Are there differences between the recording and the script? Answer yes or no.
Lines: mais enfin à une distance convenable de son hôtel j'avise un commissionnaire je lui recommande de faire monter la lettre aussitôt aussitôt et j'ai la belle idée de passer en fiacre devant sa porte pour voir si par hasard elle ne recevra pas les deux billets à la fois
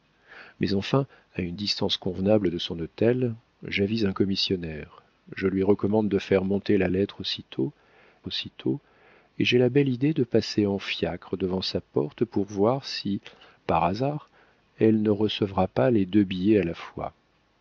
no